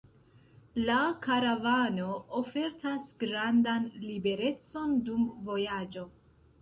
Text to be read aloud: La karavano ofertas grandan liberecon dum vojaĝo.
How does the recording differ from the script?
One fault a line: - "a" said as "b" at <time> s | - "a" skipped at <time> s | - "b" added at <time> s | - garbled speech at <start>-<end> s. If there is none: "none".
none